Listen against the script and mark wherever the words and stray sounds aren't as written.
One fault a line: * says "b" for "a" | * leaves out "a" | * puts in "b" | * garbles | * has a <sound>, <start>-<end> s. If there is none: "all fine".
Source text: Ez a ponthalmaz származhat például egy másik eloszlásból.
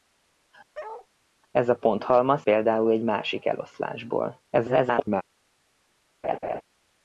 * has a bark, 0.7-1.1 s
* leaves out "származhat"
* garbles
* has a laugh, 6.2-6.6 s